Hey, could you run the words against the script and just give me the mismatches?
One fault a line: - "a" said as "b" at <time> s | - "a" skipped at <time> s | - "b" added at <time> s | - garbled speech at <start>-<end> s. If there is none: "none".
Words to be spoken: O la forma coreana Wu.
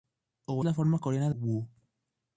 none